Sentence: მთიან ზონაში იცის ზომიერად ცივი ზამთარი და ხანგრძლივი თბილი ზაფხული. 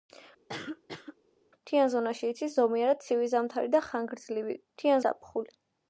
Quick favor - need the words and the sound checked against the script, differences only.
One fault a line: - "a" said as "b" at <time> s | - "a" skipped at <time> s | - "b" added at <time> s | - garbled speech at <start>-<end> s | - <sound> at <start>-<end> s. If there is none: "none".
- cough at 0.5-1.2 s
- "თბილი" said as "მთიან" at 4.7 s